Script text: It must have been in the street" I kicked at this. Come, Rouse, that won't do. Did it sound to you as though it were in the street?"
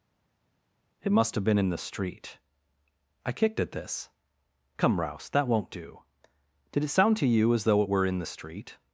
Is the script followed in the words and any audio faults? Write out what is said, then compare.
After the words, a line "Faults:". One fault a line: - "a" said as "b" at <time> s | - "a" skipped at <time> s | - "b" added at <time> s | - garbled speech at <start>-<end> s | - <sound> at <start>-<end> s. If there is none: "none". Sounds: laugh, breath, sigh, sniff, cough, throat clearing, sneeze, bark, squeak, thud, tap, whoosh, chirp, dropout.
It must have been in the street" I kicked at this. Come, Rouse, that won't do. Did it sound to you as though it were in the street?"
Faults:
none